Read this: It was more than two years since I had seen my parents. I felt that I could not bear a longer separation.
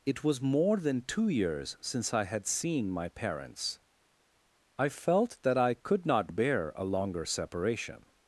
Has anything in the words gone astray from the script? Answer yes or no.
no